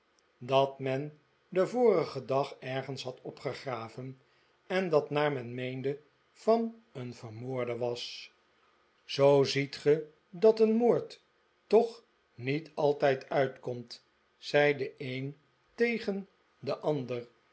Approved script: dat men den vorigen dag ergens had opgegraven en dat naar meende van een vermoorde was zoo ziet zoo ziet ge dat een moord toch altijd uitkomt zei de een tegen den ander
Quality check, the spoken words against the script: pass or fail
fail